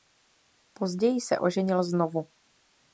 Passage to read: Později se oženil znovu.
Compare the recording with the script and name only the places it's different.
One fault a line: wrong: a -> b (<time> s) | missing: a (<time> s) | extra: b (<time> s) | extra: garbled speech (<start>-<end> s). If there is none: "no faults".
no faults